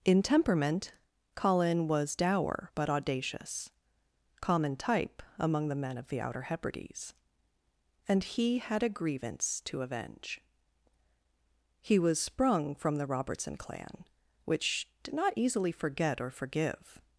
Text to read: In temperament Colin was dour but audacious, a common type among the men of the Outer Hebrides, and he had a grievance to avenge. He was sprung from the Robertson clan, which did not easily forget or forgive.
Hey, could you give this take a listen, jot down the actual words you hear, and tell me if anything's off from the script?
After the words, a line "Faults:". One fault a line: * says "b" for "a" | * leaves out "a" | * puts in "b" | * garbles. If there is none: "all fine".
In temperament Colin was dour but audacious, common type among the men of the Outer Hebrides, and he had a grievance to avenge. He was sprung from the Robertson clan, which did not easily forget or forgive.
Faults:
* leaves out "a"